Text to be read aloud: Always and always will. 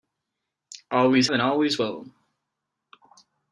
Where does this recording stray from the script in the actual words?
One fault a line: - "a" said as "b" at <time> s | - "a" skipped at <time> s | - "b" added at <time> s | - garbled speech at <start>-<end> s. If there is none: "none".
none